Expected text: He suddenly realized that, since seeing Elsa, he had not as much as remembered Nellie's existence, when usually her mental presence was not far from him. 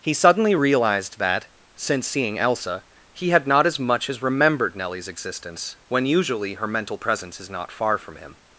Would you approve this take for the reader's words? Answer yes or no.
no